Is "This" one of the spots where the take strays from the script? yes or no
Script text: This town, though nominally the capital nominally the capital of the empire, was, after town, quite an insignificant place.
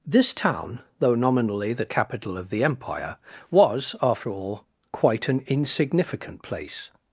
no